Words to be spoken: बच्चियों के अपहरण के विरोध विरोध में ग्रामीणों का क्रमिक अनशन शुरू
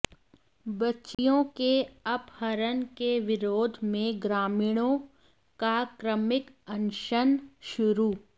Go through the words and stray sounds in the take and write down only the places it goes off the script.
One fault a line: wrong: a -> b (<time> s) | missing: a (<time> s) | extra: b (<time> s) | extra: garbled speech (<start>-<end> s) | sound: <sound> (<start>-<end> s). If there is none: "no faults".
sound: dropout (1.1-1.2 s)
missing: विरोध (3.8 s)